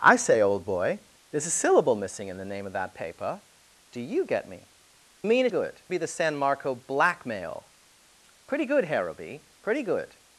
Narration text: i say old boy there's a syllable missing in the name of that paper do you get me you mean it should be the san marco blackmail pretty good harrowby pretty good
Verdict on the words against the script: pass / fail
fail